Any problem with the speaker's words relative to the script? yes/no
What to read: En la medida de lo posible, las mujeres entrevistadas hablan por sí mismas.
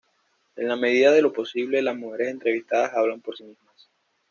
no